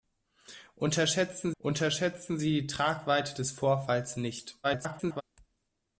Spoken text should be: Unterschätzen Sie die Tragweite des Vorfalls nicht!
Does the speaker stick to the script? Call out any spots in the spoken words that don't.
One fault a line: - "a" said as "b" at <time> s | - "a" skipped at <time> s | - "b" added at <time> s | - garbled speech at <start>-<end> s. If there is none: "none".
- "unterschätzen" added at 1.6 s
- garbled speech at 4.6-5.2 s